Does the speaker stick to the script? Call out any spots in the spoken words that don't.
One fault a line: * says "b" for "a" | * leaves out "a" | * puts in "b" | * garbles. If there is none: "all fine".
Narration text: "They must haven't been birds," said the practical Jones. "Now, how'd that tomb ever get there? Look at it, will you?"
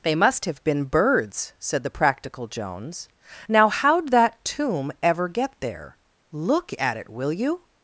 * says "have" for "haven't"